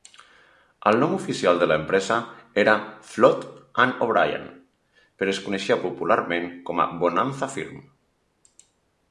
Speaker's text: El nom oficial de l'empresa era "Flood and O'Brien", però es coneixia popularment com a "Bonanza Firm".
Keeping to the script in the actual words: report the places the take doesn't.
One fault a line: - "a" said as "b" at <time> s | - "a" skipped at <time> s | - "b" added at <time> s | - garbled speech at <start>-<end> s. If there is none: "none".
none